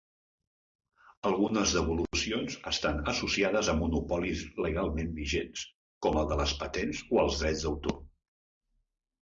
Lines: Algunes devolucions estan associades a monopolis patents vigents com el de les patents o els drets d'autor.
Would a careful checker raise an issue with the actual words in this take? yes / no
yes